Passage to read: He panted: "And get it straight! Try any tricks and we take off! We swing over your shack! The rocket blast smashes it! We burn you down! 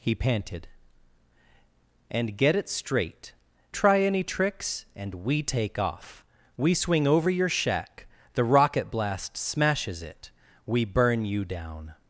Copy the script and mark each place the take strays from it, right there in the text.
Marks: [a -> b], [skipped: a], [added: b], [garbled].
He panted: "And get it straight! Try any tricks and we take off! We swing over your shack! The rocket blast smashes it! We burn you down!